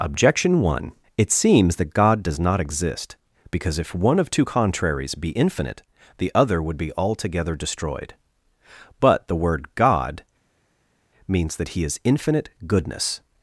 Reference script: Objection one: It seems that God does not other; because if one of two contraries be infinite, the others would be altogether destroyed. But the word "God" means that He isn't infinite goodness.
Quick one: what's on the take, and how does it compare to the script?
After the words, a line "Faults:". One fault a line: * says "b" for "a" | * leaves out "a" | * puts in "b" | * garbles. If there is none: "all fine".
Objection one: It seems that God does not exist; because if one of two contraries be infinite, the other would be altogether destroyed. But the word "God" means that He is infinite goodness.
Faults:
* says "exist" for "other"
* says "other" for "others"
* says "is" for "isn't"